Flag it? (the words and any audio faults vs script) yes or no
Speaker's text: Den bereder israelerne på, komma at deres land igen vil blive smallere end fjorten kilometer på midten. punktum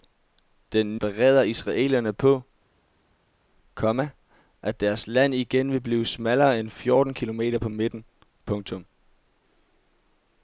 no